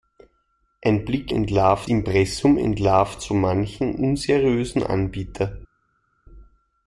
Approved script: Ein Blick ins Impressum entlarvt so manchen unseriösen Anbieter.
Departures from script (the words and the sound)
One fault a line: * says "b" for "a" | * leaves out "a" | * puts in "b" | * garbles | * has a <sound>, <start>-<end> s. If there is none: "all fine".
* says "entlarvt" for "ins"